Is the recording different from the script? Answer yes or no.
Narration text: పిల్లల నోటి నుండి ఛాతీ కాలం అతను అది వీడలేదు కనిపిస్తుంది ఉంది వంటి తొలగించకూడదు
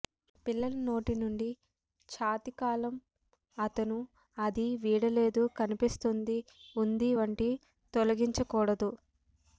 no